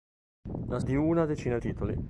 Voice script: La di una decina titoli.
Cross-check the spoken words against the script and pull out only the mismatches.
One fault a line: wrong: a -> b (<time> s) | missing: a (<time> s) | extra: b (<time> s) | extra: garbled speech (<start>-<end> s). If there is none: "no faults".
no faults